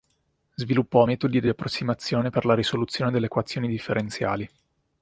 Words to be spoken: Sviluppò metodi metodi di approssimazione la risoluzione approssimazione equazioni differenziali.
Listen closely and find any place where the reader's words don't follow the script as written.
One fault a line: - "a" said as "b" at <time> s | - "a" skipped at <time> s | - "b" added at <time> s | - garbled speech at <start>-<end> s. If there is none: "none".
- "metodi" skipped at 1.4 s
- "per" added at 2.3 s
- "approssimazione" said as "delle" at 3.1 s